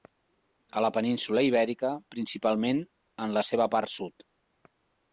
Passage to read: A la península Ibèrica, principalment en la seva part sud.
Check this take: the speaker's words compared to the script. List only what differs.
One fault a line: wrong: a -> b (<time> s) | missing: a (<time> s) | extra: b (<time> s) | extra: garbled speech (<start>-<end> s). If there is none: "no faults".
no faults